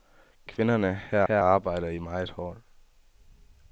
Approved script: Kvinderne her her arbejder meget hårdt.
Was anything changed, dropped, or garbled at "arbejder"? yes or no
no